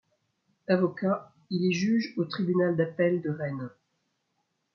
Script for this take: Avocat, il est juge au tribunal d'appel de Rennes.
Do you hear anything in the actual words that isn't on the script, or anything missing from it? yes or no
no